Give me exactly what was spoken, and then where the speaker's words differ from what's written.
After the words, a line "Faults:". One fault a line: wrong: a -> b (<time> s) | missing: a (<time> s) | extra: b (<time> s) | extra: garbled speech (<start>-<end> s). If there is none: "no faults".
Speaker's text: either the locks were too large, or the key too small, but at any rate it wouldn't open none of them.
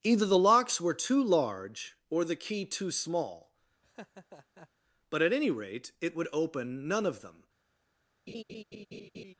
either the locks were too large, or the key too small, but at any rate it would open none of them.
Faults:
wrong: wouldn't -> would (6.2 s)